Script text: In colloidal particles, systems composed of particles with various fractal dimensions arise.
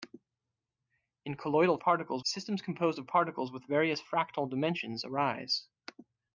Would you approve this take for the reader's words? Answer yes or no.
yes